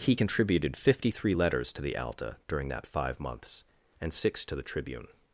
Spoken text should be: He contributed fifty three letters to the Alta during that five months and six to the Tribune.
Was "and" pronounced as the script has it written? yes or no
yes